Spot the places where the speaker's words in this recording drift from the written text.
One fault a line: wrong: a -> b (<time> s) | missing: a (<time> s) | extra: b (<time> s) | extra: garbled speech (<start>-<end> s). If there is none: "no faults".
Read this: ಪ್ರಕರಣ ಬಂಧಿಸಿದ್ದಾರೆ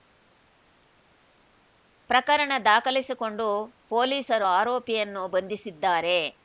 extra: ದಾಖಲಿಸಿಕೊಂಡು ಪೊಲೀಸರು ಆರೋಪಿಯನ್ನು (2.6 s)